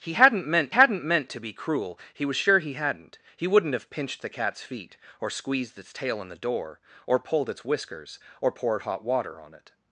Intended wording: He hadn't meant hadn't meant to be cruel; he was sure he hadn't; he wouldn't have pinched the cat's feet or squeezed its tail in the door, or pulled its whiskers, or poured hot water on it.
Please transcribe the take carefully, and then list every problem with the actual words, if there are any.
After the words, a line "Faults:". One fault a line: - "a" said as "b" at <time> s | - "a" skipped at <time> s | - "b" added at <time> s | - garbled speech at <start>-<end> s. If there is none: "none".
He hadn't meant hadn't meant to be cruel; he was sure he hadn't; he wouldn't have pinched the cat's feet or squeezed its tail in the door, or pulled its whiskers, or poured hot water on it.
Faults:
none